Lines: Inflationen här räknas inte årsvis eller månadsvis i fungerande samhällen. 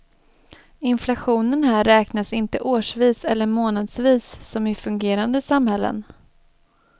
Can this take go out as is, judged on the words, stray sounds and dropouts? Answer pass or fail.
fail